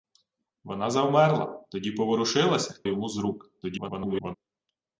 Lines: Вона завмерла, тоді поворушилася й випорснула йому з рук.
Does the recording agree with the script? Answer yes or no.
no